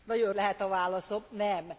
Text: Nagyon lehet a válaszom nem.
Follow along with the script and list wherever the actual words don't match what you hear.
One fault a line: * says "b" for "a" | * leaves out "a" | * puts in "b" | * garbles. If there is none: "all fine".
all fine